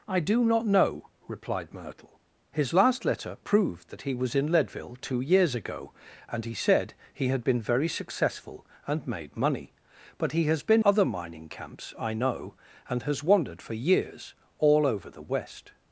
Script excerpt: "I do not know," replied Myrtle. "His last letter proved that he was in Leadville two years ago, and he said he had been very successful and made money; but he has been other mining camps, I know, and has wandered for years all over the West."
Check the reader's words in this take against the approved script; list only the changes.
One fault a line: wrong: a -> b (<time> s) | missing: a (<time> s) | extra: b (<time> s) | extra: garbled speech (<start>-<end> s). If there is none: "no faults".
no faults